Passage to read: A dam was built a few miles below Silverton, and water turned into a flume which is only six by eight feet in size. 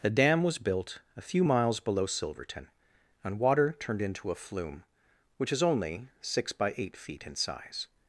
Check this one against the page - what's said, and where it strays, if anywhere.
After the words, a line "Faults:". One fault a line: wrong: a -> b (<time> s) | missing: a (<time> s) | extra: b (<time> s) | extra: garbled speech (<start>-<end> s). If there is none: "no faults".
A dam was built a few miles below Silverton, and water turned into a flume which is only six by eight feet in size.
Faults:
no faults